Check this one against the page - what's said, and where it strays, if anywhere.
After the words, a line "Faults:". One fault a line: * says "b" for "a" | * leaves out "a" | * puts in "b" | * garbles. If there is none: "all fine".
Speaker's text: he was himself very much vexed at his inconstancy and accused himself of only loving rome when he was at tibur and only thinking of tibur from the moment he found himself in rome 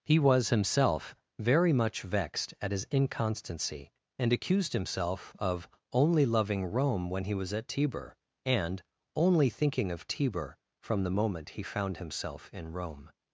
he was himself very much vexed at his inconstancy and accused himself of only loving rome when he was at tibur and only thinking of tibur from the moment he found himself in rome
Faults:
all fine